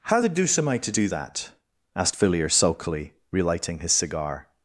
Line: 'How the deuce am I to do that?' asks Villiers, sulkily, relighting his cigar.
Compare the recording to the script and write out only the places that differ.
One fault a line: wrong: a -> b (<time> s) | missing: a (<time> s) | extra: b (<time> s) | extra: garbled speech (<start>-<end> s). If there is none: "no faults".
wrong: asks -> asked (2.0 s)